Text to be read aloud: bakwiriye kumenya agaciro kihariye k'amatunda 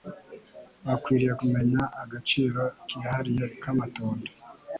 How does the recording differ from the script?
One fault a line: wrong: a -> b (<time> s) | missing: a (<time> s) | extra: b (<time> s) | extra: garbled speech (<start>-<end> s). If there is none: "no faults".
no faults